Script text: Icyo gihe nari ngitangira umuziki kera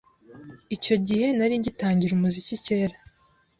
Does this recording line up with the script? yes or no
yes